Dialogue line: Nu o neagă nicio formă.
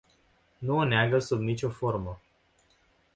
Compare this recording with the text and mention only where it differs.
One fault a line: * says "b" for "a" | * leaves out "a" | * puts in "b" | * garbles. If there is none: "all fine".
* puts in "sub"